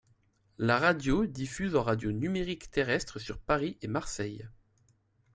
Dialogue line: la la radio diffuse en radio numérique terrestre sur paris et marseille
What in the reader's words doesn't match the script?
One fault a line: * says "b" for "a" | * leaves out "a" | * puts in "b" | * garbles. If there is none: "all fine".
* leaves out "la"